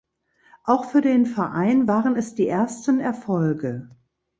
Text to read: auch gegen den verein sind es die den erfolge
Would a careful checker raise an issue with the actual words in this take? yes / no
yes